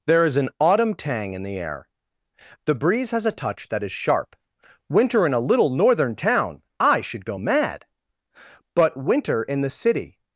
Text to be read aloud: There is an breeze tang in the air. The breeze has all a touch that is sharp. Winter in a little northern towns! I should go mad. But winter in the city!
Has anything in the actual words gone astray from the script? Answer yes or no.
yes